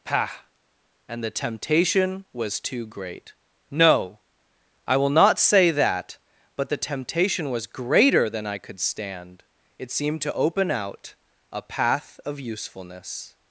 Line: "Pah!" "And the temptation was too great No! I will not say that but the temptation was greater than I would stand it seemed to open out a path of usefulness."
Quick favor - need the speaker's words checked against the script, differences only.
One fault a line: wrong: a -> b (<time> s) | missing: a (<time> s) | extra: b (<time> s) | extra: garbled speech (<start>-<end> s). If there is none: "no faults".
wrong: would -> could (8.6 s)